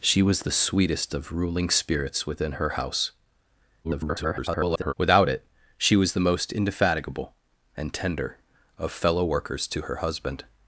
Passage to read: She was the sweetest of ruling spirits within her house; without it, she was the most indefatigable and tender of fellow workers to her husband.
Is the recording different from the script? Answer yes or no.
yes